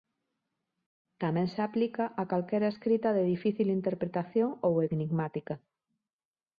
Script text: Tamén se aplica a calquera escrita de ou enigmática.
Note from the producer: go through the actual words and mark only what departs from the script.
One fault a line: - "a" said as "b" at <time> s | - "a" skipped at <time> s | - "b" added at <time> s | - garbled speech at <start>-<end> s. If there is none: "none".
- "difícil interpretación" added at 3.3 s